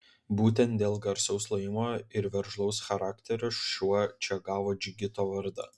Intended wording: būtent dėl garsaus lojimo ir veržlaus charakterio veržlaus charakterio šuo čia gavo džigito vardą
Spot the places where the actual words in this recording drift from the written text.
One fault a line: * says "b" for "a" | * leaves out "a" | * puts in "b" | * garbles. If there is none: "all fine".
* leaves out "veržlaus charakterio"